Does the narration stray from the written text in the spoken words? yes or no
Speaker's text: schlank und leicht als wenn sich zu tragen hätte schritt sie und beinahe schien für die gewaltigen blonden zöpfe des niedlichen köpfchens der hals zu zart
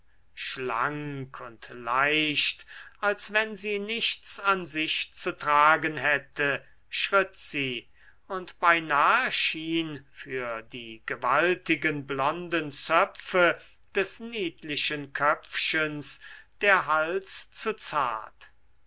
yes